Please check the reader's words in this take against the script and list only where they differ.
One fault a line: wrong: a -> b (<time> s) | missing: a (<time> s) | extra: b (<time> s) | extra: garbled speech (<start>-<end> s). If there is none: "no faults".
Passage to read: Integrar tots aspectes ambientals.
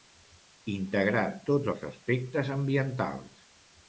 extra: els (1.7 s)